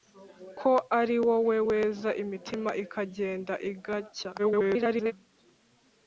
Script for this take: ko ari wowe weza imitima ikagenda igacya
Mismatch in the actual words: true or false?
true